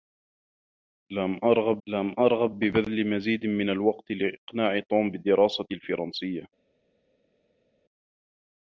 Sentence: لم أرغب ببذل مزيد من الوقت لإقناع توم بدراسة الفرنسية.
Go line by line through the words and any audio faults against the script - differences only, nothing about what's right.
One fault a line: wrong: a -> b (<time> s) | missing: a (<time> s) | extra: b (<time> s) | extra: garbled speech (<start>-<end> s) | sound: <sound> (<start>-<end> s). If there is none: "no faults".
extra: لم أرغب (1.9 s)